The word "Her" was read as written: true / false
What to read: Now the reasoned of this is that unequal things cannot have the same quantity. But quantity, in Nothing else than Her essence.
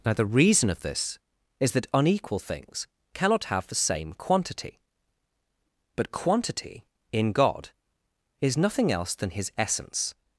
false